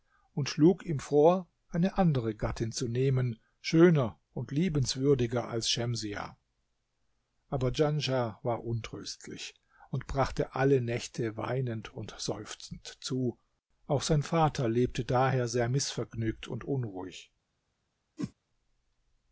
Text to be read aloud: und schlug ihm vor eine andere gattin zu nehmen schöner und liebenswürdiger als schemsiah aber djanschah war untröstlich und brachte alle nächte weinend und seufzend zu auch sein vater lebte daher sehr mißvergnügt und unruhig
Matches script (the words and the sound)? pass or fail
fail